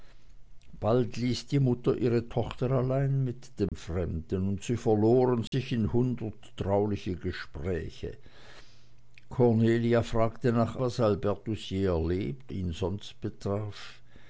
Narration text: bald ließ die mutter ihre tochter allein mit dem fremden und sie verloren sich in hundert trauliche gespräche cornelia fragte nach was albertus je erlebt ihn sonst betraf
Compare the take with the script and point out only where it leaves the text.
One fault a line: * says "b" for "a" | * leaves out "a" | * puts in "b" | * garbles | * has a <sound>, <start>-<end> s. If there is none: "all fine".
* has a dropout, 3.7-3.7 s
* has a dropout, 5.5-5.5 s